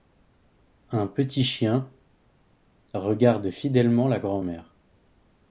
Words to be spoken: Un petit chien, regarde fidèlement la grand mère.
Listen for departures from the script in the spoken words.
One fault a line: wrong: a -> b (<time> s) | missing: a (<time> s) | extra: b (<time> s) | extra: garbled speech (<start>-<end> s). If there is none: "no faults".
no faults